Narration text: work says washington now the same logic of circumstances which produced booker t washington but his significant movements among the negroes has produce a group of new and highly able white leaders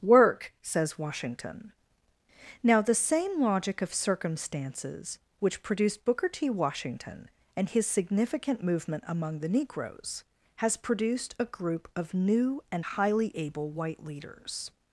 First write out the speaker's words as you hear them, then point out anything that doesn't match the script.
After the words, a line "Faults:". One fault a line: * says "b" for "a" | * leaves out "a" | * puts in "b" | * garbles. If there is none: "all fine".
work says washington now the same logic of circumstances which produced booker t washington and his significant movement among the negroes has produced a group of new and highly able white leaders
Faults:
* says "and" for "but"
* says "movement" for "movements"
* says "produced" for "produce"